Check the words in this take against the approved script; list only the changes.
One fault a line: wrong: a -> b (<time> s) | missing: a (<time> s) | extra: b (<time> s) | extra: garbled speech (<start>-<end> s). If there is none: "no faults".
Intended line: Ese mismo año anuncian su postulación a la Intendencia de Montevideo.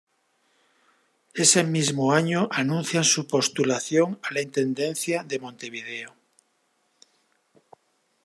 no faults